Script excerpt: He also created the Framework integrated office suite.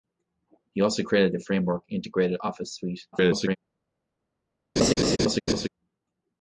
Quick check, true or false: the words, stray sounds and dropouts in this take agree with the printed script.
false